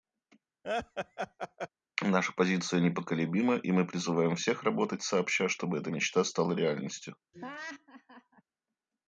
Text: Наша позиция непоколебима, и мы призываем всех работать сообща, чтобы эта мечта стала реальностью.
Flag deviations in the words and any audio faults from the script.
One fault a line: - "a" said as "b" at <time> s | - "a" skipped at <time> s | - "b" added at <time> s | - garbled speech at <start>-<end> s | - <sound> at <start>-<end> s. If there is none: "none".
- laugh at 0.6-1.7 s
- laugh at 7.3-8.4 s